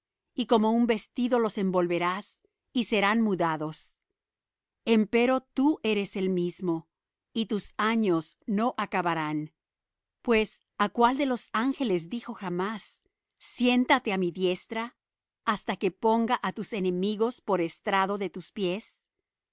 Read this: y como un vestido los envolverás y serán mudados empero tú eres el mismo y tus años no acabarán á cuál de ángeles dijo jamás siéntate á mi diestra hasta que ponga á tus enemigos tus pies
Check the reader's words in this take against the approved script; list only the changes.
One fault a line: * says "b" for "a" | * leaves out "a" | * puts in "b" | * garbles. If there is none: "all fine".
* puts in "pues"
* puts in "los"
* puts in "por estrado de"